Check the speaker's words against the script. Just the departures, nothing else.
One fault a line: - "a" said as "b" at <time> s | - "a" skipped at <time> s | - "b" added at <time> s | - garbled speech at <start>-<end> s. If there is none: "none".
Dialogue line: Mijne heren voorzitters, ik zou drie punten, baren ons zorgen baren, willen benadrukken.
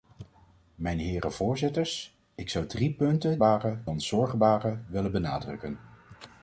none